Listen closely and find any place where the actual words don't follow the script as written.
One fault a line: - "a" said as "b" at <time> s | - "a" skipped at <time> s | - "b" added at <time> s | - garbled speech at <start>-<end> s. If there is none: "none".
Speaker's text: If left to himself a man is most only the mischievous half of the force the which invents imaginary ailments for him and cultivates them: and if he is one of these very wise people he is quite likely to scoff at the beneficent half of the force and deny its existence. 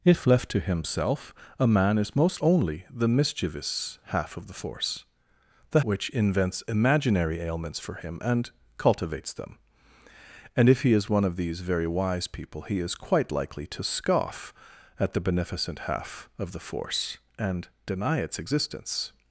none